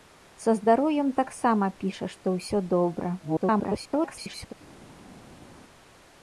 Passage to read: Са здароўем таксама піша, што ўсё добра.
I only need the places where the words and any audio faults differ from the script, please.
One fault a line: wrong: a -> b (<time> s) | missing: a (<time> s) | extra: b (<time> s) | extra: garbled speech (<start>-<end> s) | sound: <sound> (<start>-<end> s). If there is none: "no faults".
extra: garbled speech (3.2-4.5 s)